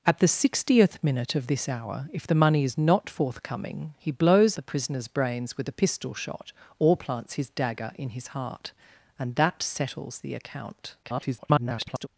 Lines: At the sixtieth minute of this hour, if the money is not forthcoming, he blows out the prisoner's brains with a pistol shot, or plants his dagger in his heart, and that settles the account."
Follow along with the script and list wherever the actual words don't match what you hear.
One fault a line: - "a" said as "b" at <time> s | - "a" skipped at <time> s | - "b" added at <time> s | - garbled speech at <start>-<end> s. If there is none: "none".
- "out" skipped at 4.6 s
- garbled speech at 11.0-12.1 s